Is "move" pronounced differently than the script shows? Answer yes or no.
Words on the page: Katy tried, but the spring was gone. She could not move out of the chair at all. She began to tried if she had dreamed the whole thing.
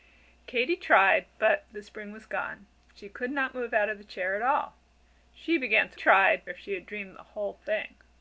no